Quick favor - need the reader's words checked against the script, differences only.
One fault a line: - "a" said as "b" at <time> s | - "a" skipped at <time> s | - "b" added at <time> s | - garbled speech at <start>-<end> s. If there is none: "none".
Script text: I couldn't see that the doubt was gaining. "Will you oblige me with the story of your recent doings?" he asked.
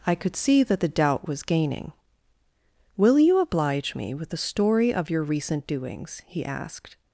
- "couldn't" said as "could" at 0.1 s